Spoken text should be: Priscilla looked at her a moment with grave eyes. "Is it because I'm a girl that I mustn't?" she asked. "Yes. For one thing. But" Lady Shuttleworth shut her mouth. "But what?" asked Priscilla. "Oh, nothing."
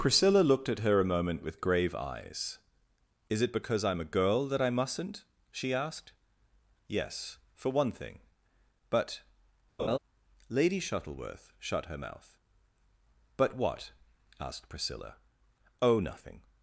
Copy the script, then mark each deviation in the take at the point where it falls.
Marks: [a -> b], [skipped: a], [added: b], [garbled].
Priscilla looked at her a moment with grave eyes. "Is it because I'm a girl that I mustn't?" she asked. "Yes. For one thing. But" Lady Shuttleworth shut her mouth. "But what?" asked Priscilla. "Oh, nothing."